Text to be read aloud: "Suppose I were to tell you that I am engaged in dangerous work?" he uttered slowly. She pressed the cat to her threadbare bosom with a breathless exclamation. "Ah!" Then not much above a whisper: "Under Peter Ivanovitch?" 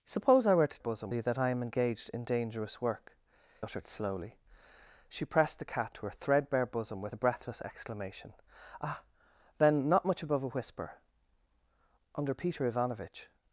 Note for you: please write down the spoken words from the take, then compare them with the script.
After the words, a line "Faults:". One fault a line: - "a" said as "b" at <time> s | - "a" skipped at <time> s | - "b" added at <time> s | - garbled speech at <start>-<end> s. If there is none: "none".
"Suppose I were to bosom you that I am engaged in dangerous work?" uttered slowly. She pressed the cat to her threadbare bosom with a breathless exclamation. "Ah!" Then not much above a whisper: "Under Peter Ivanovitch?"
Faults:
- "tell" said as "bosom" at 0.8 s
- "he" skipped at 3.2 s